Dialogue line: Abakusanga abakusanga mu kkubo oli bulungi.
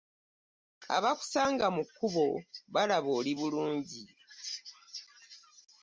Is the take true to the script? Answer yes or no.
no